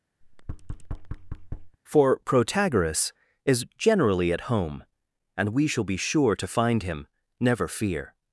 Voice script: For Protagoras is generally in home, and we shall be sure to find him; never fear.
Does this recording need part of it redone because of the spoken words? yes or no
yes